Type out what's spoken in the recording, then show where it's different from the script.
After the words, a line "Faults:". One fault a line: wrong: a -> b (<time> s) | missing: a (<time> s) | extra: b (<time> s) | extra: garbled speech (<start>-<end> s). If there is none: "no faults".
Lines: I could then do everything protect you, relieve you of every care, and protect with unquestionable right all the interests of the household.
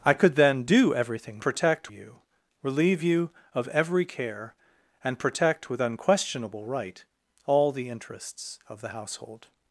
I could then do everything protect you, relieve you of every care, and protect with unquestionable right all the interests of the household.
Faults:
no faults